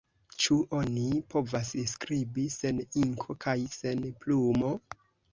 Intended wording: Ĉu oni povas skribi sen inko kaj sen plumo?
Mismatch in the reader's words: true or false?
false